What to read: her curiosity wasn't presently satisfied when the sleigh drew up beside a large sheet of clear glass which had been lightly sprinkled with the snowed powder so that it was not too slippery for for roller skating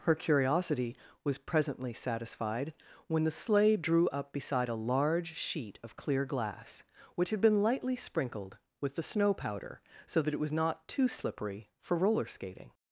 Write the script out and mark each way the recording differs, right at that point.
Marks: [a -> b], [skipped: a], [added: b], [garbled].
her curiosity [wasn't -> was] presently satisfied when the sleigh drew up beside a large sheet of clear glass which had been lightly sprinkled with the [snowed -> snow] powder so that it was not too slippery for [skipped: for] roller skating